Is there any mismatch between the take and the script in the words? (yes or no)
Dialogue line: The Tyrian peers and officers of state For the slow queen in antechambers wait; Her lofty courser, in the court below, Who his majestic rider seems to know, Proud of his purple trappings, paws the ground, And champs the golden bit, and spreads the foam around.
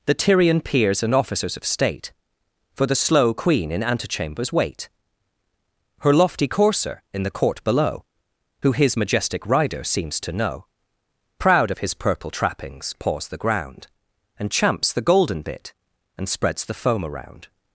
no